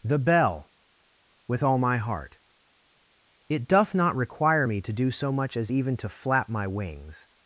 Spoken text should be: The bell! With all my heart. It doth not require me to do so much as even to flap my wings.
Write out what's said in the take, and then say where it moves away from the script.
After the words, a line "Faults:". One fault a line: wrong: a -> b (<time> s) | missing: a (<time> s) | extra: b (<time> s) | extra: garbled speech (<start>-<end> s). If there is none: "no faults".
The bell! With all my heart. It doth not require me to do so much as even to flap my wings.
Faults:
no faults